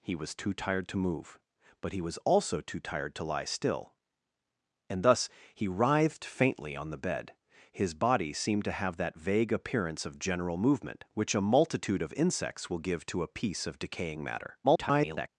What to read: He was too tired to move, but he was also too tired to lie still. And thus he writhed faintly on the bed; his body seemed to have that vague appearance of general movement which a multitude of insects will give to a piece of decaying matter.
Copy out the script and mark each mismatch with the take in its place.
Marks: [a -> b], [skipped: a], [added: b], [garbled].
He was too tired to move, but he was also too tired to lie still. And thus he writhed faintly on the bed; his body seemed to have that vague appearance of general movement which a multitude of insects will give to a piece of decaying matter. [garbled]